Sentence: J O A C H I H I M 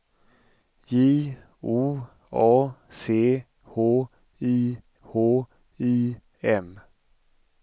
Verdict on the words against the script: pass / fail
pass